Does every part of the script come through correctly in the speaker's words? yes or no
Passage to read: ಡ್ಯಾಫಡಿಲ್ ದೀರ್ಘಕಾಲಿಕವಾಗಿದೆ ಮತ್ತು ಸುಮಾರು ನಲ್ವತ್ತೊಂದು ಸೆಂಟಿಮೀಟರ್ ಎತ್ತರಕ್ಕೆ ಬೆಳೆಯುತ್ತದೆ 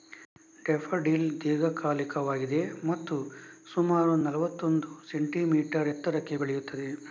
yes